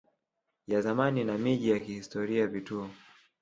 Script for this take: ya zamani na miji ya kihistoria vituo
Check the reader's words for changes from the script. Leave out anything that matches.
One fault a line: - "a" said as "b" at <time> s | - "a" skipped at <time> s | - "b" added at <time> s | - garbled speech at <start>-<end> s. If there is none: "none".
none